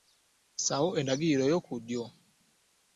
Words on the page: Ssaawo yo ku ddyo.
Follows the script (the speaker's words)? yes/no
no